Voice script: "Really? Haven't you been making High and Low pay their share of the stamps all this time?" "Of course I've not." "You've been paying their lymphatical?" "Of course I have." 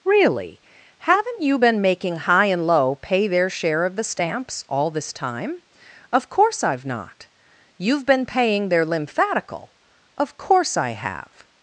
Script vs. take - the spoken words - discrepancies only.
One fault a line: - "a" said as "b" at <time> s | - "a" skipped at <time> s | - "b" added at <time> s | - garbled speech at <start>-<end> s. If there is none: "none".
none